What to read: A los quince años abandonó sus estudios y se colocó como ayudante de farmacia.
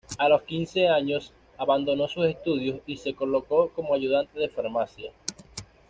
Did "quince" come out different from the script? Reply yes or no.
no